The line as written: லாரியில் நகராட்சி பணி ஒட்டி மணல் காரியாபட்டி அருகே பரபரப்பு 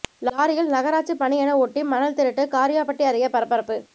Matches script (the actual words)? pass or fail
fail